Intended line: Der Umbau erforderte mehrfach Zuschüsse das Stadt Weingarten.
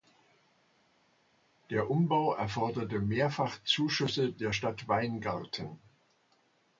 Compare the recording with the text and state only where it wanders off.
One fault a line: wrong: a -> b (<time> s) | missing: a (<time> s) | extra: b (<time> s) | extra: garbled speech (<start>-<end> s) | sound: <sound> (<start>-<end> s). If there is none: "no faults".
wrong: das -> der (4.3 s)